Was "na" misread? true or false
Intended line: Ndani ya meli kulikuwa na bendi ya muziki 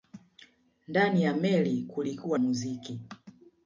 true